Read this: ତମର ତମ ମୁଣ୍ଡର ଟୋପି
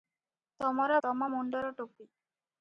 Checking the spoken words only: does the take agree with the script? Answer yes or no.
yes